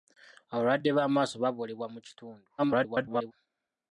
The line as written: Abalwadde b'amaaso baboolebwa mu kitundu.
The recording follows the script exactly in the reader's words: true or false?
false